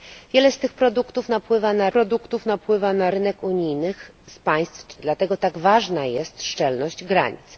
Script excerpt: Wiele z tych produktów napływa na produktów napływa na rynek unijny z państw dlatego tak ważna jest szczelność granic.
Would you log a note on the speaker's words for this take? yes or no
no